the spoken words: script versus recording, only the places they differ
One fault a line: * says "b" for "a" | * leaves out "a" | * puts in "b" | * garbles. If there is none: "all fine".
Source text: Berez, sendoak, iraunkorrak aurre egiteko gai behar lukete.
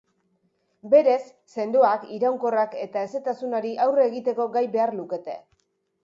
* puts in "eta hezetasunari"